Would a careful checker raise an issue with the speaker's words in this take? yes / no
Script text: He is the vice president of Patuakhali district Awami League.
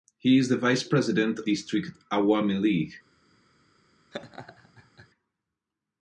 yes